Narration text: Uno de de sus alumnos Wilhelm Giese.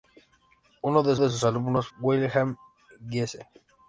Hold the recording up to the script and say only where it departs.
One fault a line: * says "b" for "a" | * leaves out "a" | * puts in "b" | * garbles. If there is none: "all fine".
all fine